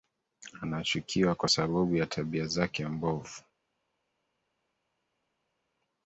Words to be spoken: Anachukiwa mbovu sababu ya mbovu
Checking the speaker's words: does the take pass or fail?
fail